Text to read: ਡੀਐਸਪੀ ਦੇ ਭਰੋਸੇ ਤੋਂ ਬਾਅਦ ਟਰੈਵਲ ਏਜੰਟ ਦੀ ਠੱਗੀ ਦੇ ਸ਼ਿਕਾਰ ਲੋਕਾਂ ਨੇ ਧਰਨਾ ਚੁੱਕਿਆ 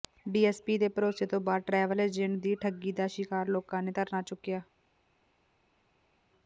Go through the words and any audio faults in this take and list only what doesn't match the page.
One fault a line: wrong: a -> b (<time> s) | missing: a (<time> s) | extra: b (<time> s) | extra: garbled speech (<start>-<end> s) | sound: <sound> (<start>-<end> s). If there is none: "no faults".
wrong: ਦੇ -> ਦਾ (2.9 s)